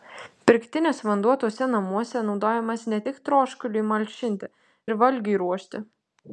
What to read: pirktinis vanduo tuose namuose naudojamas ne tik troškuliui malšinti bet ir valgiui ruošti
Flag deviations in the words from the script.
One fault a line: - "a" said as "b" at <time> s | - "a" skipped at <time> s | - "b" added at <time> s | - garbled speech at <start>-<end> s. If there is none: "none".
- "bet" skipped at 4.5 s